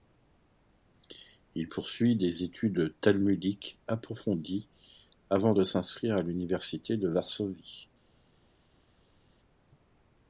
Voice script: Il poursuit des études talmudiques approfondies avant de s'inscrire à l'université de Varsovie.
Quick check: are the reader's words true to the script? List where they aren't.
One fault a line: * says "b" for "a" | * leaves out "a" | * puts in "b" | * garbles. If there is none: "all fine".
all fine